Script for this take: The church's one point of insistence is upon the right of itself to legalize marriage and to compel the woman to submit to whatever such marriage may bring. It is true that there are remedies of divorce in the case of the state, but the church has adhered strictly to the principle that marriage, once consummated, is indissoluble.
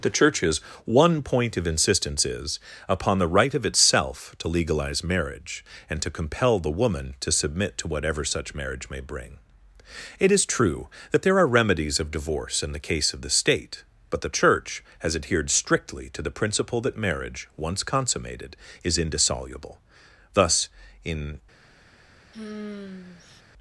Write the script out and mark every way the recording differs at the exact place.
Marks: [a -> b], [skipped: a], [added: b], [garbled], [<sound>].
The church's one point of insistence is upon the right of itself to legalize marriage and to compel the woman to submit to whatever such marriage may bring. It is true that there are remedies of divorce in the case of the state, but the church has adhered strictly to the principle that marriage, once consummated, is indissoluble. [added: Thus in] [sigh]